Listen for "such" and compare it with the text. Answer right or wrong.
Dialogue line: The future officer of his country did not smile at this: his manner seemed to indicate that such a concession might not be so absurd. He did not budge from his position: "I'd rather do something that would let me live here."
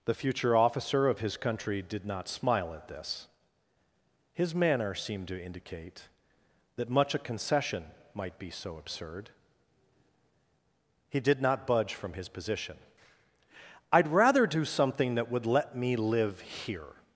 wrong